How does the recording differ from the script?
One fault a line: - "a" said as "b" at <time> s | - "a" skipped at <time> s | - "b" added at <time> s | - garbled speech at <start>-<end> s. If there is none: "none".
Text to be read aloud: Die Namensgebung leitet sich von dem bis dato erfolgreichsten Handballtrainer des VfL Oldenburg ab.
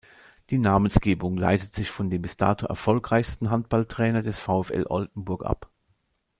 none